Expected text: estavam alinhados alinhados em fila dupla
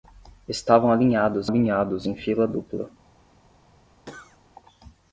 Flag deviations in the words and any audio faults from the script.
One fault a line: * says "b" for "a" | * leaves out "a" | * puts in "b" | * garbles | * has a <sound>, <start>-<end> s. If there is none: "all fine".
* has a cough, 4.1-4.4 s